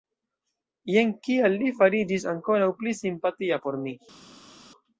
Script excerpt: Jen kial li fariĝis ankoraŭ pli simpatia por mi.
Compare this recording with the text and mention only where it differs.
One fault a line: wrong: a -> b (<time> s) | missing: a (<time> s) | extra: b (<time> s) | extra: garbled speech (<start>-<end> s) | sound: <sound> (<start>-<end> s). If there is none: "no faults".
no faults